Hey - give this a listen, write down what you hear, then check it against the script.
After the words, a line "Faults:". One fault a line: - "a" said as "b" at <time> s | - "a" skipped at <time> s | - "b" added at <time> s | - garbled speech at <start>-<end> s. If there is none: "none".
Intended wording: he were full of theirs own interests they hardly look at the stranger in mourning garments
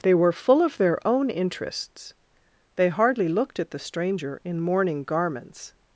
they were full of their own interests they hardly looked at the stranger in mourning garments
Faults:
- "he" said as "they" at 0.0 s
- "theirs" said as "their" at 0.8 s
- "look" said as "looked" at 3.3 s